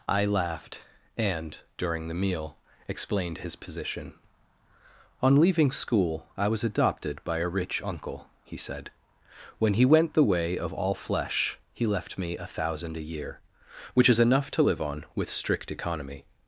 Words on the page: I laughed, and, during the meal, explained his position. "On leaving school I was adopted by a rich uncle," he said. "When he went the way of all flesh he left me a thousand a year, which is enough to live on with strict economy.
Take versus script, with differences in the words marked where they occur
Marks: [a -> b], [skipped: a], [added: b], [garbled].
I laughed, and, during the meal, explained his position. "On leaving school I was adopted by a rich uncle," he said. "When he went the way of all flesh he left me a thousand a year, which is enough to live on with strict economy.